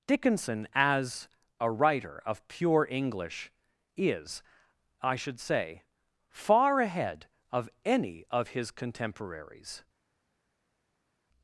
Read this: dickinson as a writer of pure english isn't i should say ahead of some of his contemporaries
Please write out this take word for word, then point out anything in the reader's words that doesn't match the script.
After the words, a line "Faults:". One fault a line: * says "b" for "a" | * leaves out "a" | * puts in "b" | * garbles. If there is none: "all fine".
dickinson as a writer of pure english is i should say far ahead of any of his contemporaries
Faults:
* says "is" for "isn't"
* puts in "far"
* says "any" for "some"